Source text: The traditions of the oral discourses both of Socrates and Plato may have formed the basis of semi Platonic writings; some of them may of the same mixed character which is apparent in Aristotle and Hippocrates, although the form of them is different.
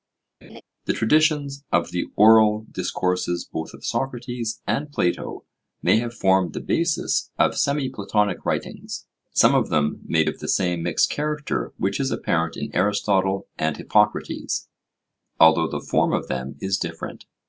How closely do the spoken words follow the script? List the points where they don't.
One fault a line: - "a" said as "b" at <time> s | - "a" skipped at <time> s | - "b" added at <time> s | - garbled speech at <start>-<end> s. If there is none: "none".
none